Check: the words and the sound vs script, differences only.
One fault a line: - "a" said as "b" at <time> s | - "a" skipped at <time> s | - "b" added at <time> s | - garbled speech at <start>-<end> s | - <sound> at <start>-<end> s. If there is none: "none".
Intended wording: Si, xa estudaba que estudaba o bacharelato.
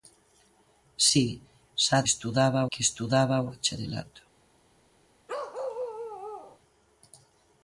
- bark at 5.3-6.6 s